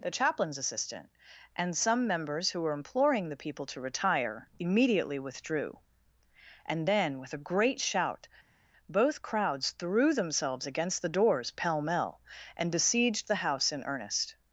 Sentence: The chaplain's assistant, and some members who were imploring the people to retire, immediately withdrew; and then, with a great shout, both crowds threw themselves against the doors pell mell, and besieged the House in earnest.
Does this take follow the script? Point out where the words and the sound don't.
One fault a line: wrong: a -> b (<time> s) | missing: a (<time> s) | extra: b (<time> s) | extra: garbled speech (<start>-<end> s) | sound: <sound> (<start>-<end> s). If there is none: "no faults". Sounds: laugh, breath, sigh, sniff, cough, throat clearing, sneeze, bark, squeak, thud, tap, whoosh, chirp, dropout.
no faults